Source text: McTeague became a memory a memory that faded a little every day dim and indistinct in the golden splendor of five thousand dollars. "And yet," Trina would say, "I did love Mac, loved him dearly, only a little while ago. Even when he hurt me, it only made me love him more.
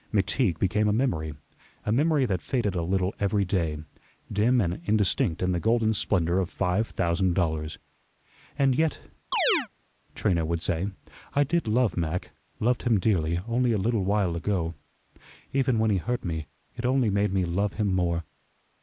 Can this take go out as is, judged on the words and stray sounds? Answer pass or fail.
fail